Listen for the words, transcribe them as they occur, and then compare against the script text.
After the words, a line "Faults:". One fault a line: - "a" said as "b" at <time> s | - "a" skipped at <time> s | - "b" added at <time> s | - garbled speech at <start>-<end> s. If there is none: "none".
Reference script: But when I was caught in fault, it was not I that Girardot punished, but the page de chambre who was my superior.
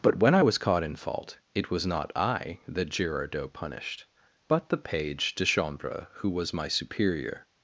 But when I was caught in fault, it was not I that Girardot punished, but the page de chambre who was my superior.
Faults:
none